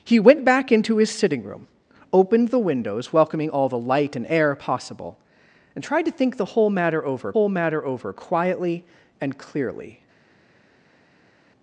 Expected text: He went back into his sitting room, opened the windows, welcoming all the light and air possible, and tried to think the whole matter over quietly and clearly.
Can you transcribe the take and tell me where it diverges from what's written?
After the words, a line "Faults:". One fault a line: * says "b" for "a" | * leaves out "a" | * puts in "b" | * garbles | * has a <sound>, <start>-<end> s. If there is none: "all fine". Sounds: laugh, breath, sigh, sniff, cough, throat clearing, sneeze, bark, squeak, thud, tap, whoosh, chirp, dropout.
He went back into his sitting room, opened the windows, welcoming all the light and air possible, and tried to think the whole matter over whole matter over quietly and clearly.
Faults:
* puts in "whole matter over"